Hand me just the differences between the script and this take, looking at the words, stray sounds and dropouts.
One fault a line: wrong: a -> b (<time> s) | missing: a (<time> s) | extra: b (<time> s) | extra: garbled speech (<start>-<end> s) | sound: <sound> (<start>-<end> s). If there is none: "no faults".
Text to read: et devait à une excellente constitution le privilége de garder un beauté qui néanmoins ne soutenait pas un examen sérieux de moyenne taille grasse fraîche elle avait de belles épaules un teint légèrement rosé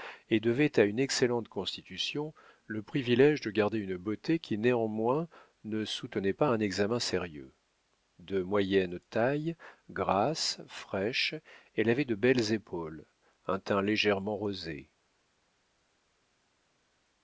wrong: un -> une (3.8 s)